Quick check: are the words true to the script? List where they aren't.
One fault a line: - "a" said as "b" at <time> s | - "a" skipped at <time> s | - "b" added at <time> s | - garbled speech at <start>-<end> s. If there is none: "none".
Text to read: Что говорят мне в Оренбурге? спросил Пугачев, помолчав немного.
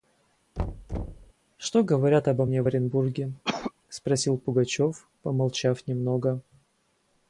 - "обо" added at 2.3 s